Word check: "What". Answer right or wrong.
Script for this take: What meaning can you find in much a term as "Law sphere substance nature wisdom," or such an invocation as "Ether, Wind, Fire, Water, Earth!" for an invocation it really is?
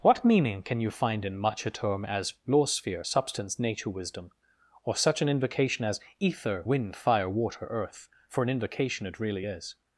right